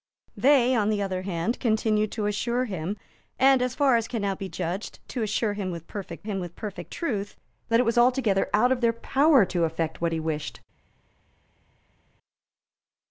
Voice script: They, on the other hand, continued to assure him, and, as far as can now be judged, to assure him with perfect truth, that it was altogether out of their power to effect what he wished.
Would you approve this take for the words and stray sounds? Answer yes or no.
no